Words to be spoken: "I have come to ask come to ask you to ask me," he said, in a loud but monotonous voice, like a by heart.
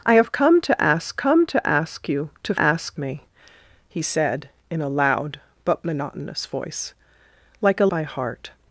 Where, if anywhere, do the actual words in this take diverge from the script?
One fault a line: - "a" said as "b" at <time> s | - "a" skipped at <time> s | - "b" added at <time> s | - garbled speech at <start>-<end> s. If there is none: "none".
none